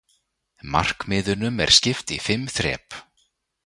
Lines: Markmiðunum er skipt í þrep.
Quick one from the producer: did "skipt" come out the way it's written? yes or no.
yes